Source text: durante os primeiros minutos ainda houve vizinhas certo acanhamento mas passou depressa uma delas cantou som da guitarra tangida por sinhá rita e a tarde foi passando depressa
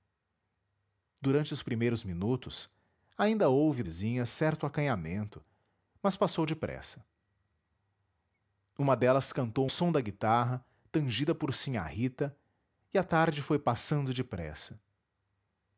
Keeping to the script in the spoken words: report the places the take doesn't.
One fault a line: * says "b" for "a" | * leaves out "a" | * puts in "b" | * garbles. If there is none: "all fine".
all fine